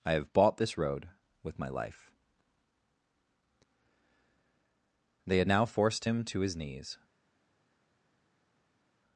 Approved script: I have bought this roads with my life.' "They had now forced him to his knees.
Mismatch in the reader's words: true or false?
true